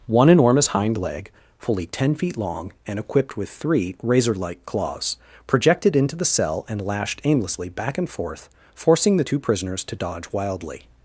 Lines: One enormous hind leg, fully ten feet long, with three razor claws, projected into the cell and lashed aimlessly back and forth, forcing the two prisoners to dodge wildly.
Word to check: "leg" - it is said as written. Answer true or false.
true